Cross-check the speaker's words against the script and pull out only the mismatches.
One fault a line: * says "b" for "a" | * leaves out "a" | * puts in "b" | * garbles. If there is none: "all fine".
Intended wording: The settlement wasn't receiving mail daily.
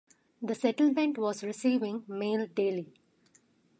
* says "was" for "wasn't"